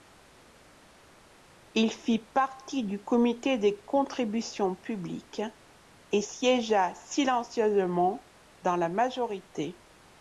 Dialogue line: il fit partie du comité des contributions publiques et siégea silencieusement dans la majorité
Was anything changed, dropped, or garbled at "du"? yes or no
no